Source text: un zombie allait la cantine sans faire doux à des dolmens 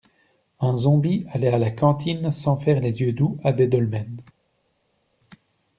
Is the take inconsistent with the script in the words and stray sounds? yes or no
yes